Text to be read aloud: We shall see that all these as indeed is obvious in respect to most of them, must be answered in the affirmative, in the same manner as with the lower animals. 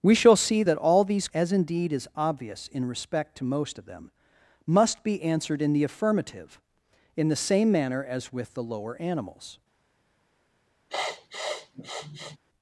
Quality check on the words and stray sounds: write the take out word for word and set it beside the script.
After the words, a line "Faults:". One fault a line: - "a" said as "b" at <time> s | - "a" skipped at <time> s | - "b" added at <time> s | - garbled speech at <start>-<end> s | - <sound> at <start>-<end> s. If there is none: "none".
We shall see that all these as indeed is obvious in respect to most of them, must be answered in the affirmative, in the same manner as with the lower animals.
Faults:
- sniff at 10.9-12.4 s